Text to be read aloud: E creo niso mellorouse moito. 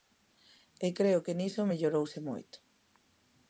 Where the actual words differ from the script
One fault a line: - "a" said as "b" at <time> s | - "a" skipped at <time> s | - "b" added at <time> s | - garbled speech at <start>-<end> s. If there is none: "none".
- "que" added at 1.2 s